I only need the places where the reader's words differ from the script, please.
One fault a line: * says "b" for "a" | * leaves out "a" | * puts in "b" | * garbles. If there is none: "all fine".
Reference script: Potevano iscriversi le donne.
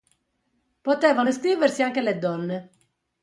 * puts in "anche"